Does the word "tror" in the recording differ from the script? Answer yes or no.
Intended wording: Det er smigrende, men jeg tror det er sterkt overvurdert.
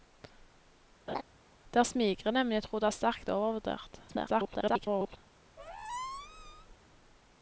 no